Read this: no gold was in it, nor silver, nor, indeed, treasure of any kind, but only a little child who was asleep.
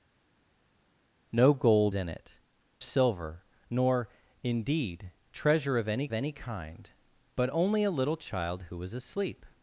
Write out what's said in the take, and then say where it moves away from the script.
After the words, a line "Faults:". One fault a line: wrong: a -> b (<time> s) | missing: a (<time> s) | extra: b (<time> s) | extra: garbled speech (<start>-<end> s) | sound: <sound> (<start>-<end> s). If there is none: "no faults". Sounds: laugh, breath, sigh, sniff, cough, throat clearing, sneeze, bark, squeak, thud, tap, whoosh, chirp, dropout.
no gold in it, silver, nor, indeed, treasure of any any kind, but only a little child who was asleep.
Faults:
missing: was (1.9 s)
missing: nor (2.3 s)
extra: any (6.1 s)